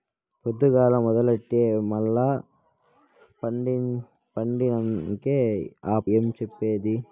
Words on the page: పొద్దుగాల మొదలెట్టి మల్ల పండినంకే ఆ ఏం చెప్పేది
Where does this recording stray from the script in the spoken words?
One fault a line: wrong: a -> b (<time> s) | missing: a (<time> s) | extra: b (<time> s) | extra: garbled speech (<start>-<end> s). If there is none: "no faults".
no faults